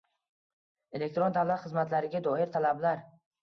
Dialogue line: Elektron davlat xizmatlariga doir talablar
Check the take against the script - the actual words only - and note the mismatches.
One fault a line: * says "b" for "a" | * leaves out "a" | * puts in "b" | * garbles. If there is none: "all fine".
all fine